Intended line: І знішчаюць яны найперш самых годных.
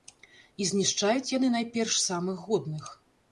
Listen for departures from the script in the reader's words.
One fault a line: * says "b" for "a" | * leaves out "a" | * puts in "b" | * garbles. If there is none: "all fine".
all fine